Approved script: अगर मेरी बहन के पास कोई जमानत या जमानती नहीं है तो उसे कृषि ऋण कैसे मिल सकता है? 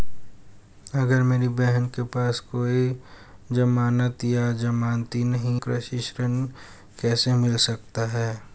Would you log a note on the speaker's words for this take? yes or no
yes